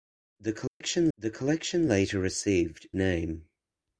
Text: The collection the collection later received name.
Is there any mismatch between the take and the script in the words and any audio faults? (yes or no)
yes